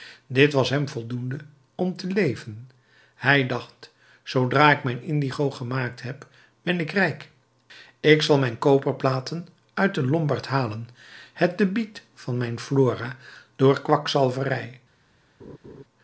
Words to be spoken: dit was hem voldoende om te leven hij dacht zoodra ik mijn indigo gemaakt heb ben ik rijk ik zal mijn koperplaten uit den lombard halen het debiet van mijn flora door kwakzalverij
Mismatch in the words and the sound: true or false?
true